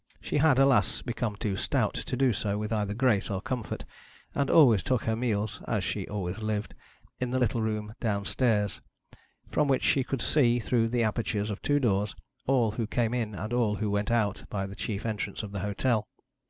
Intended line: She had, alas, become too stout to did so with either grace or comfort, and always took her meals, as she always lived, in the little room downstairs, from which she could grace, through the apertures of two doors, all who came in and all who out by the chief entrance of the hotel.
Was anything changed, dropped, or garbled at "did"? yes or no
yes